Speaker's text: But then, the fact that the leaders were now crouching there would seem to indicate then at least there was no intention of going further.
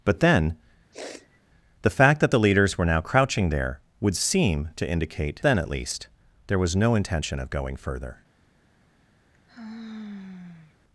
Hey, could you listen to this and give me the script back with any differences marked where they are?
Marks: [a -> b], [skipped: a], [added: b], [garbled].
But then, the fact that the leaders were now crouching there would seem to indicate then at least there was no intention of going further.